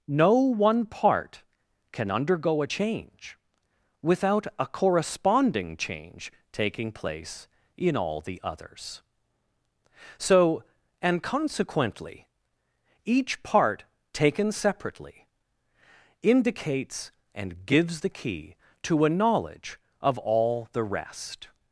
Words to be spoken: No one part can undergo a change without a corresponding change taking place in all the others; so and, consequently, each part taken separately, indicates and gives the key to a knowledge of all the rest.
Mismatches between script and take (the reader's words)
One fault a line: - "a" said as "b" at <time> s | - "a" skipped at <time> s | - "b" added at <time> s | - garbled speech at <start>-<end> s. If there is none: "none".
none